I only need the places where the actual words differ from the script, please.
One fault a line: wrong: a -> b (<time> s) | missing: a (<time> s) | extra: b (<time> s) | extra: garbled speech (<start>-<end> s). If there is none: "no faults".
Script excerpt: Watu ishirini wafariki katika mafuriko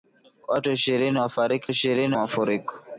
wrong: katika -> ishirini (1.7 s)